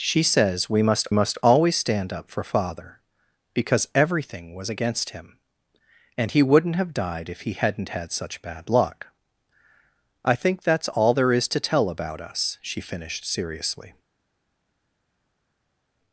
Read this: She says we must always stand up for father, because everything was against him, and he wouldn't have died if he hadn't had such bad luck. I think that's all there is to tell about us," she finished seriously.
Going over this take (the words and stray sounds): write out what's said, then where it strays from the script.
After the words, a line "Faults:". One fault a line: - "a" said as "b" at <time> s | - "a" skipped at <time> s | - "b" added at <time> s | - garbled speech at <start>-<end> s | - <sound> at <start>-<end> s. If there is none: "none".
She says we must must always stand up for father, because everything was against him, and he wouldn't have died if he hadn't had such bad luck. I think that's all there is to tell about us," she finished seriously.
Faults:
- "must" added at 1.1 s